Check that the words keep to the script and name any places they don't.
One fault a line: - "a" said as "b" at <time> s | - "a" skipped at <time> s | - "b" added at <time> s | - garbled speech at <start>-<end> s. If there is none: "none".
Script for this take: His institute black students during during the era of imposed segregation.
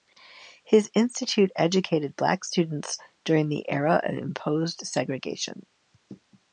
- "educated" added at 1.6 s
- "during" skipped at 3.5 s